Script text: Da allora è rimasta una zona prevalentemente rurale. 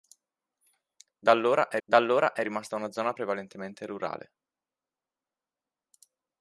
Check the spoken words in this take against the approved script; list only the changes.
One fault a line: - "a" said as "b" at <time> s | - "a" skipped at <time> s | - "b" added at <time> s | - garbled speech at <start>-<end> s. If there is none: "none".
- "da allora è" added at 1.8 s